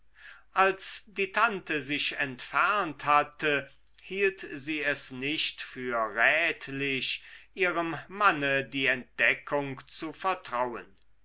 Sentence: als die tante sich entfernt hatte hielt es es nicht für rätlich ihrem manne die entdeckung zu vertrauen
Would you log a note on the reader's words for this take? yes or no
yes